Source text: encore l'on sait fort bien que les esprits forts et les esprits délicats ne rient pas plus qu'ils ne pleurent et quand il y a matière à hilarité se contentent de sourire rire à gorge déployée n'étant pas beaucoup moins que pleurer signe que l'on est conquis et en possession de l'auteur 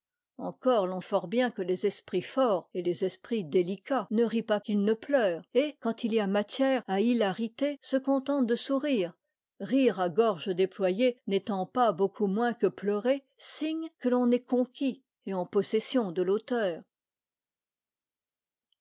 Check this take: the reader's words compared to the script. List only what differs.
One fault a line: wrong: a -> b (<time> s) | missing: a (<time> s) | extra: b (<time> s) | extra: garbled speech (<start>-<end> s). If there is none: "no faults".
missing: sait (1.0 s)
missing: plus (4.6 s)